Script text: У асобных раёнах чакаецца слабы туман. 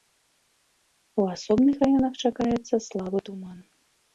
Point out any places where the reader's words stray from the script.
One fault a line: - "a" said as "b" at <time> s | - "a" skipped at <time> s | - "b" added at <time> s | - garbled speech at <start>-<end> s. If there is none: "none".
none